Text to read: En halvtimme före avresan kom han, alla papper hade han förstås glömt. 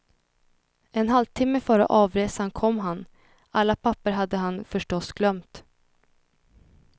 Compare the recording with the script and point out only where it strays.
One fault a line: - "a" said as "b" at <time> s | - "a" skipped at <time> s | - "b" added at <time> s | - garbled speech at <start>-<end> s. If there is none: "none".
none